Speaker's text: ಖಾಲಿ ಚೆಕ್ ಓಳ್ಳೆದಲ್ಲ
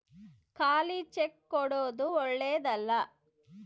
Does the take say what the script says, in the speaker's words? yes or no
no